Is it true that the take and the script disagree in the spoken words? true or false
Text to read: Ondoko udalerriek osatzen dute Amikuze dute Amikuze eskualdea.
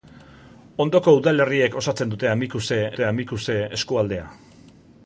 false